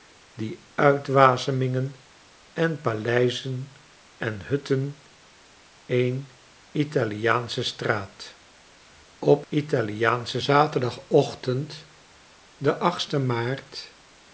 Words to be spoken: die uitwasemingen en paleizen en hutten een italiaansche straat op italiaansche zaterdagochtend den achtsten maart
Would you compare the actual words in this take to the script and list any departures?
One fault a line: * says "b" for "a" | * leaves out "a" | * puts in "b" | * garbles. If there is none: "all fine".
all fine